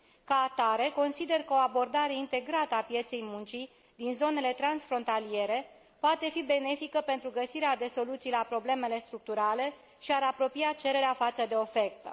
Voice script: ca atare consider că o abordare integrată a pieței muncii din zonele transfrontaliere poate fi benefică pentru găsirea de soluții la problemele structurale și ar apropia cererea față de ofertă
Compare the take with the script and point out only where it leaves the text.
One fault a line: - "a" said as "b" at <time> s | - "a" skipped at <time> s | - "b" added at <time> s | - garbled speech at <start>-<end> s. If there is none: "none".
none